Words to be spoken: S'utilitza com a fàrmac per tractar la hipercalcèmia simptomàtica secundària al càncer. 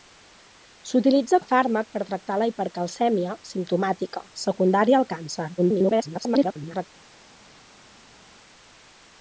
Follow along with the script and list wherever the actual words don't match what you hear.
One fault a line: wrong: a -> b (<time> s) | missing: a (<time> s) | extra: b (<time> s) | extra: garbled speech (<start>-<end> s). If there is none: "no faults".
missing: com (1.4 s)
extra: garbled speech (5.6-6.9 s)